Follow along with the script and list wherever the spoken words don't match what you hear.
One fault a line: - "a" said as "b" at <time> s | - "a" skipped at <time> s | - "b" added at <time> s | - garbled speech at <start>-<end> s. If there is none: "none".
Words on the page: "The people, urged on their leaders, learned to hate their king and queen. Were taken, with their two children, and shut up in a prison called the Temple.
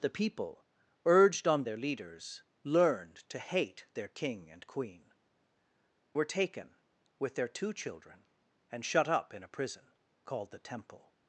none